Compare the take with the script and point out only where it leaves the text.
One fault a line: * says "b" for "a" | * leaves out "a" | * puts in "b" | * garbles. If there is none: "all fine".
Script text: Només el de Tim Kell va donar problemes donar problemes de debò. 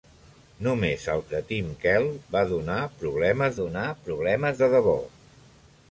all fine